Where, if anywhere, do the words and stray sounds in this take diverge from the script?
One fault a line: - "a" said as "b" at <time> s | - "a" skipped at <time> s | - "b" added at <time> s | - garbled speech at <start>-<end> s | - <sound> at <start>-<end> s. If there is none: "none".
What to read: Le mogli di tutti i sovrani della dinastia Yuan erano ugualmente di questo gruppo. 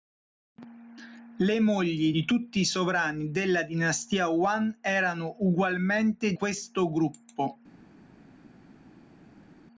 - "di" skipped at 6.3 s